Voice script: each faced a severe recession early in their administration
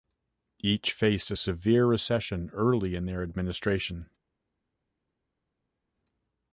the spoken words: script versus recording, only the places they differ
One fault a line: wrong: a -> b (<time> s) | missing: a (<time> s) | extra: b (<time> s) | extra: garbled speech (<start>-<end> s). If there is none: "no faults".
no faults